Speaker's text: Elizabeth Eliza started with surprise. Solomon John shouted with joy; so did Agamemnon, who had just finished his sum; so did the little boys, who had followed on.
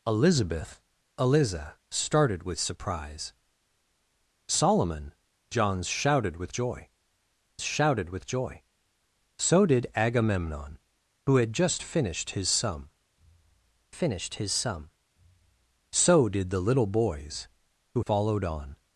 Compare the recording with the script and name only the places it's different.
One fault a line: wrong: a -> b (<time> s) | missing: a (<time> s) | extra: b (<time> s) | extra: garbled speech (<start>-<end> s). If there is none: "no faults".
extra: shouted with joy (7.6 s)
extra: finished his sum (13.9 s)
missing: had (18.0 s)